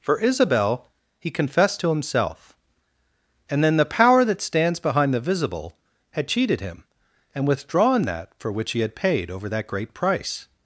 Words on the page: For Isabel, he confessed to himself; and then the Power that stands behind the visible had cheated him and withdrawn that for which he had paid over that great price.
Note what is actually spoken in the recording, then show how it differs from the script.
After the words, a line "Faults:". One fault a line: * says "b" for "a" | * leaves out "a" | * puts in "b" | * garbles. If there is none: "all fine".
For Isabel, he confessed to himself; and then the Power that stands behind the visible had cheated him and withdrawn that for which he had paid over that great price.
Faults:
all fine